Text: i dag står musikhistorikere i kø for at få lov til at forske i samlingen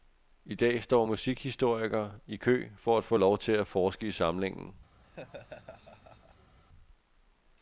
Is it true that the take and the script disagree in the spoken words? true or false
false